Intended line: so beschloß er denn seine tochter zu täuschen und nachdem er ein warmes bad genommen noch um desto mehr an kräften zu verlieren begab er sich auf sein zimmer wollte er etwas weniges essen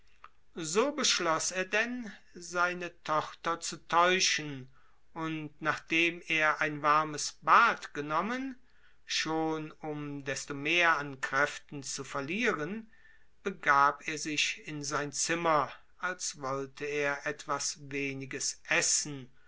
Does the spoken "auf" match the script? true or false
false